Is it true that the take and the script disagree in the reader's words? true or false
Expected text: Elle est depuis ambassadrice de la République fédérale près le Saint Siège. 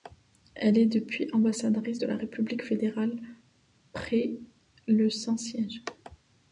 false